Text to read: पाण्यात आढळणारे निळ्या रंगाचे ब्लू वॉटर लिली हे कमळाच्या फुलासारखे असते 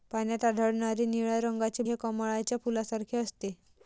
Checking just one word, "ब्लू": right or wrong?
wrong